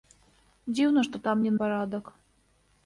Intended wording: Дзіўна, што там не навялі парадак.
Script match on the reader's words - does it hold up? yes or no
no